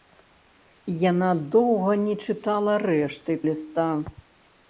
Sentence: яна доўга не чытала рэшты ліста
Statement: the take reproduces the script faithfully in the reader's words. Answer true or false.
true